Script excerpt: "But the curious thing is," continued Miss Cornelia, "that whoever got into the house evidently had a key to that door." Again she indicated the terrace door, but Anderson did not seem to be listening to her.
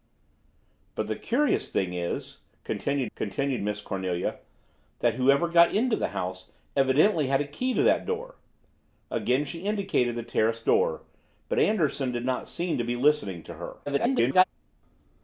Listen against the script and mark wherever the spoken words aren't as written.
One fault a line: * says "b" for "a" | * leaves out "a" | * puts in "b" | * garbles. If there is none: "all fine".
* puts in "continued"
* garbles